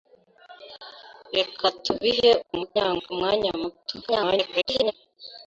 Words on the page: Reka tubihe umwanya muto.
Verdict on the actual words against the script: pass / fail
fail